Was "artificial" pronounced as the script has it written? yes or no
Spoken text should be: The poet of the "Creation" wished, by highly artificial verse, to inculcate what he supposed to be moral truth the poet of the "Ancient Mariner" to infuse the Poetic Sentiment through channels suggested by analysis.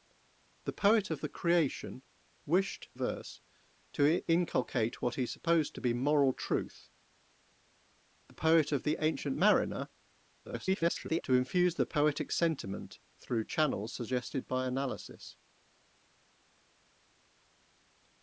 no